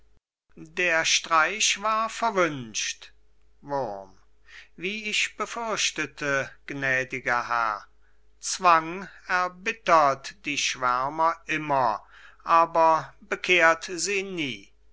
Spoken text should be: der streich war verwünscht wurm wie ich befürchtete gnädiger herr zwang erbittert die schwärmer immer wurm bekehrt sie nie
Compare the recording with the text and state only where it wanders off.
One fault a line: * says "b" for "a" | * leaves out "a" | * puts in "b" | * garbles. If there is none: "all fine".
* says "aber" for "wurm"